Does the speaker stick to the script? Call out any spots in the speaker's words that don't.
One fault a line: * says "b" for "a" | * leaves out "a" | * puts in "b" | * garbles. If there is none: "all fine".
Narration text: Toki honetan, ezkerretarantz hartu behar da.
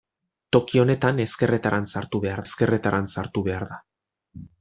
* puts in "ezkerretarantz hartu behar"